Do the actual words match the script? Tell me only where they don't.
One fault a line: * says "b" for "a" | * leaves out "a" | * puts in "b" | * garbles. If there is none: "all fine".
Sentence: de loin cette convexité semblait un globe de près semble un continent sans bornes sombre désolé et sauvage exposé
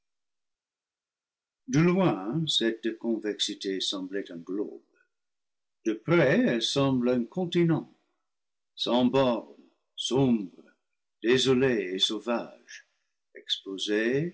* puts in "elle"